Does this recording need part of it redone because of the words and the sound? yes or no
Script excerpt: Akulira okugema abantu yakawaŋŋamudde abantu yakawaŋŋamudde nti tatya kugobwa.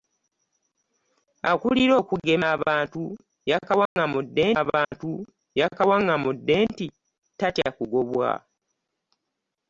yes